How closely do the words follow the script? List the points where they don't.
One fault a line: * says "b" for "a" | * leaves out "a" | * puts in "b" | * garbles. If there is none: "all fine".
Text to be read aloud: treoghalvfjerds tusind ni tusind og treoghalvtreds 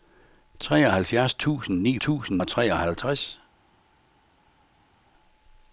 all fine